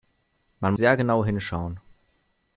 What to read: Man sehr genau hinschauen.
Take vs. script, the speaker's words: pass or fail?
pass